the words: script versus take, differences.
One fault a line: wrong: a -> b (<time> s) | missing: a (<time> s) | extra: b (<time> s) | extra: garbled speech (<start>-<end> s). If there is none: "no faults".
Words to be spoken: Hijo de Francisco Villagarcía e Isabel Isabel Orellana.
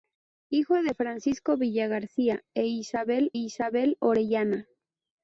no faults